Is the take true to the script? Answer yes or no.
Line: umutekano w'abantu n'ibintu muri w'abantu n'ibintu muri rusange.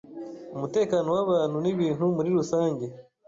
no